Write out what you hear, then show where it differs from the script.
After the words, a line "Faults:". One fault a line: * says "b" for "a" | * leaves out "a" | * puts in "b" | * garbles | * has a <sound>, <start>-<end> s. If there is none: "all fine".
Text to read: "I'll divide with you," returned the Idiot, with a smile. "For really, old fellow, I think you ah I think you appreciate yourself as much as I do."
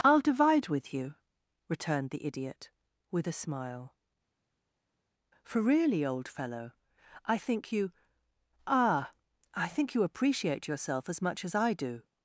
"I'll divide with you," returned the Idiot, with a smile. "For really, old fellow, I think you ah I think you appreciate yourself as much as I do."
Faults:
all fine